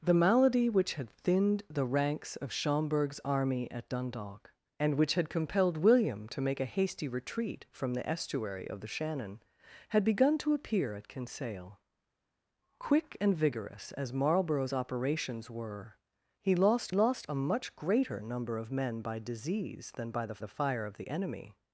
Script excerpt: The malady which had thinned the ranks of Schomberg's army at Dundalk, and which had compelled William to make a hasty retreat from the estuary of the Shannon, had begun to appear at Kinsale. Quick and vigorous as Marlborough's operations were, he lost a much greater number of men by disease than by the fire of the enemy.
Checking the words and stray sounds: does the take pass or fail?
fail